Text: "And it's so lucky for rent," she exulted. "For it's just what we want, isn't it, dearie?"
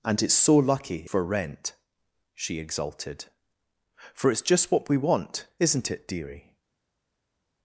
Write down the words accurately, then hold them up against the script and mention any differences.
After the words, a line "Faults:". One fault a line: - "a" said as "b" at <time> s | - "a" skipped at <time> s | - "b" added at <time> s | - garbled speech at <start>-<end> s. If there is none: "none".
"And it's so lucky for rent," she exulted. "For it's just what we want, isn't it, dearie?"
Faults:
none